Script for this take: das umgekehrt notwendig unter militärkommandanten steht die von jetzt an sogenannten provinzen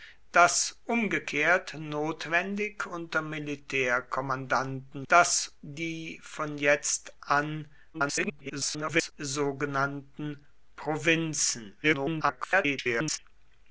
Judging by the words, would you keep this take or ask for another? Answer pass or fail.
fail